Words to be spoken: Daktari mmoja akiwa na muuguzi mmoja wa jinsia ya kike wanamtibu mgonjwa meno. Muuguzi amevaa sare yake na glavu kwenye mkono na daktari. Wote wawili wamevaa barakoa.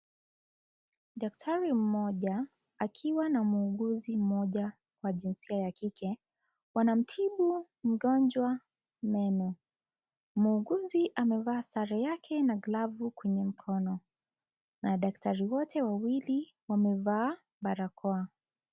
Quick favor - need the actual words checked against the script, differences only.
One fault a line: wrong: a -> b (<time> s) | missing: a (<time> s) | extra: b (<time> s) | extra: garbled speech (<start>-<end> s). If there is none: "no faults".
no faults